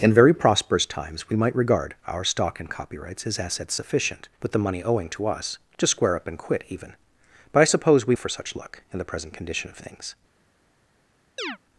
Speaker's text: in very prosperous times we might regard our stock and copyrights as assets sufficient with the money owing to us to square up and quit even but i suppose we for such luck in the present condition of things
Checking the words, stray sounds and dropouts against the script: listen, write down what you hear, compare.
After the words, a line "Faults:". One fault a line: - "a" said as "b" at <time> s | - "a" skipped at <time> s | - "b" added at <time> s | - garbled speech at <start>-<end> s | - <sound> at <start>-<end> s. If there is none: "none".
in very prosperous times we might regard our stock and copyrights as assets sufficient with the money owing to us to square up and quit even but i suppose we for such luck in the present condition of things
Faults:
- chirp at 11.4-11.6 s